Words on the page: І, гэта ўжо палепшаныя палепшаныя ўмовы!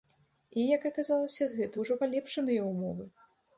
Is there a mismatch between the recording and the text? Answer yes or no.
yes